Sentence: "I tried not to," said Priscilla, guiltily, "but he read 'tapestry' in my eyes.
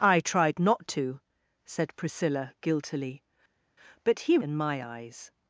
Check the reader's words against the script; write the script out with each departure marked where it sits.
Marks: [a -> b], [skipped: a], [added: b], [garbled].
"I tried not to," said Priscilla, guiltily, "but he [skipped: read 'tapestry'] in my eyes.